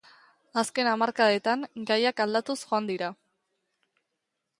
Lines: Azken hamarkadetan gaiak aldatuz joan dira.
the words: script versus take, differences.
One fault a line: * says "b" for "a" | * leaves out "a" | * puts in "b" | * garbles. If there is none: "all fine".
all fine